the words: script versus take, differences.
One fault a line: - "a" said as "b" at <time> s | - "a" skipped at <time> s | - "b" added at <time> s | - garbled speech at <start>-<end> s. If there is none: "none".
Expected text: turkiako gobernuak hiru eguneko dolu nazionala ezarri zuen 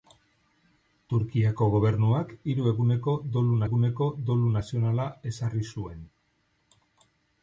- "eguneko dolu" added at 3.7 s